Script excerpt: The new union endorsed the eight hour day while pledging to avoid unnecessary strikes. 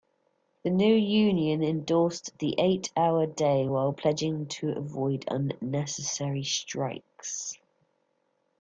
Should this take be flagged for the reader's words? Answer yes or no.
no